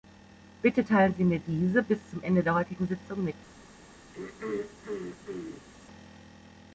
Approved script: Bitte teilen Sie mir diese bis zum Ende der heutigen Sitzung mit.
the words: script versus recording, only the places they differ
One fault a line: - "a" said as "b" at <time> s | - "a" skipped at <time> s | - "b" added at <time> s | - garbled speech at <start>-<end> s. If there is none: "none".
none